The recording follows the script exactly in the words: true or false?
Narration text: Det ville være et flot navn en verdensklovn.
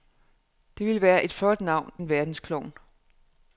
true